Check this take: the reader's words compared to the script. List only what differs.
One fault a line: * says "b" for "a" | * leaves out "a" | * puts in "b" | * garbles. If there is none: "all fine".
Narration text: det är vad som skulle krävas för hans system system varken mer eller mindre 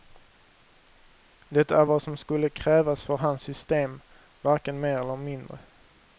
* leaves out "system"